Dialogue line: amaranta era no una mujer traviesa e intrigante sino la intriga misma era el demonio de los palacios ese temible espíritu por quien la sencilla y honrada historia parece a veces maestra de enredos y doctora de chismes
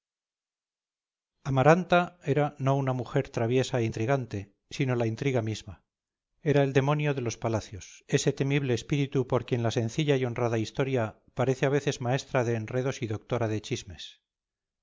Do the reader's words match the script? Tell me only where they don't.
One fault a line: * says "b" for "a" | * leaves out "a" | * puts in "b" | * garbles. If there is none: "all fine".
all fine